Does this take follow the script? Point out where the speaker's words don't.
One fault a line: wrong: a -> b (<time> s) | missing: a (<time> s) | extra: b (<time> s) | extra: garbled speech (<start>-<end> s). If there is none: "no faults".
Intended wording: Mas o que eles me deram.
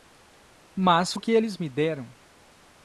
no faults